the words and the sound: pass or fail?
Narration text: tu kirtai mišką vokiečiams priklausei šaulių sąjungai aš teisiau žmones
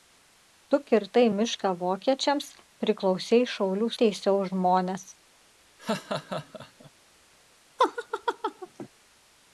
fail